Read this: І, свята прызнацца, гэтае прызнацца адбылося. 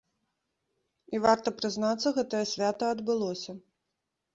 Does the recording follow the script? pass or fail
fail